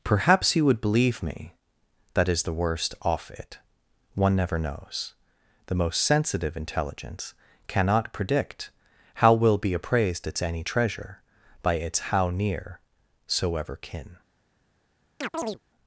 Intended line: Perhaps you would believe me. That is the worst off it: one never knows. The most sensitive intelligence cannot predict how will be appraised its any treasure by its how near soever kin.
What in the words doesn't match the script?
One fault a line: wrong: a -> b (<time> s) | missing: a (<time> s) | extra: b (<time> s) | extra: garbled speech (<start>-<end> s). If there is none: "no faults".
no faults